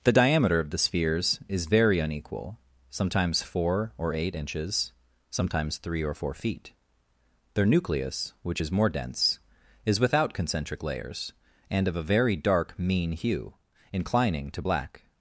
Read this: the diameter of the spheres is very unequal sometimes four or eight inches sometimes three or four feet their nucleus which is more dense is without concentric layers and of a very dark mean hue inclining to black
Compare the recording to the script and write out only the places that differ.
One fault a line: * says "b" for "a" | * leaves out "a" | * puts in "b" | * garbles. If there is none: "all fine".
all fine